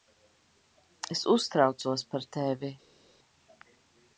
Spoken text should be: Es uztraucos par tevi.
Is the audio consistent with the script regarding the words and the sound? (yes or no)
yes